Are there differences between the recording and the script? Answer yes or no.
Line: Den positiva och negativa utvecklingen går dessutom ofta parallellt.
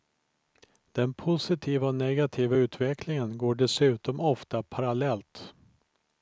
no